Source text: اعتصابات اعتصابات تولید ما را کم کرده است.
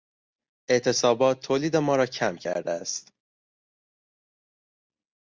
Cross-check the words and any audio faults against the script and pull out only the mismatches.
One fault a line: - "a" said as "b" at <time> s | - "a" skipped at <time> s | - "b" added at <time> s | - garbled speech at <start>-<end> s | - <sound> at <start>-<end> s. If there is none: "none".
- "اعتصابات" skipped at 1.4 s